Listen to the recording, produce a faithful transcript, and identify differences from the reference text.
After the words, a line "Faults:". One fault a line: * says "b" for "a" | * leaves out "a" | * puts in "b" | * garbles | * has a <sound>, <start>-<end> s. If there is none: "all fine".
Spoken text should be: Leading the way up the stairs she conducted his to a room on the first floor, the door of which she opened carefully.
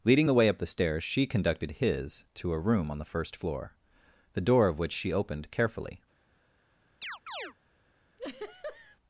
Leading the way up the stairs she conducted his to a room on the first floor, the door of which she opened carefully.
Faults:
* has a chirp, 7.0-7.5 s
* has a laugh, 8.2-9.0 s